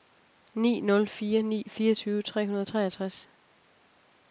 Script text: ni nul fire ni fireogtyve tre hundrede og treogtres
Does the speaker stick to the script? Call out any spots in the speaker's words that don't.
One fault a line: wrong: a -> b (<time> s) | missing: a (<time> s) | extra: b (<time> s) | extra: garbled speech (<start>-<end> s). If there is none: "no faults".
no faults